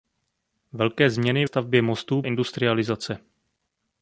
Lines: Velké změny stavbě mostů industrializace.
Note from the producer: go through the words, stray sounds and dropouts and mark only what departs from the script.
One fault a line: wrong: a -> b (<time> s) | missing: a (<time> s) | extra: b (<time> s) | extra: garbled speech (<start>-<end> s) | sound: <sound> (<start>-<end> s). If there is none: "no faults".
no faults